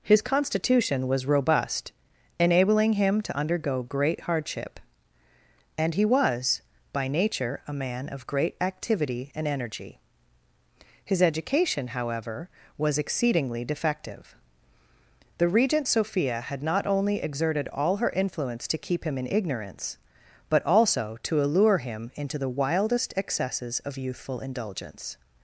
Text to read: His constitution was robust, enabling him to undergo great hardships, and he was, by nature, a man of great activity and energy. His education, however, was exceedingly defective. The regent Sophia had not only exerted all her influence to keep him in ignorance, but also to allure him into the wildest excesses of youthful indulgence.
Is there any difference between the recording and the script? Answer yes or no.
yes